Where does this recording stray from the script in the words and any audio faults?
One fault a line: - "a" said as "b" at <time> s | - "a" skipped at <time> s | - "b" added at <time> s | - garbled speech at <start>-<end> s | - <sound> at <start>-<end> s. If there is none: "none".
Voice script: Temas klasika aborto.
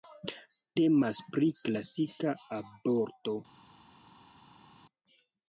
- "pri" added at 1.4 s